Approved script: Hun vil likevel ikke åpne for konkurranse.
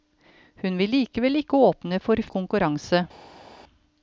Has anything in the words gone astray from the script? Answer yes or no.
no